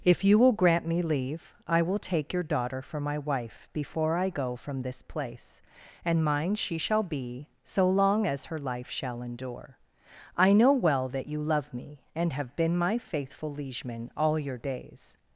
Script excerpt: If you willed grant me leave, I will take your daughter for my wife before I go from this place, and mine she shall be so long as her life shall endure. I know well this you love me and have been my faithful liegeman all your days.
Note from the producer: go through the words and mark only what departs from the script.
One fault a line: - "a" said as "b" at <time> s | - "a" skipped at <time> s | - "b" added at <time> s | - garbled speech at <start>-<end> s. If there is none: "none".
- "willed" said as "will" at 0.4 s
- "this" said as "that" at 11.1 s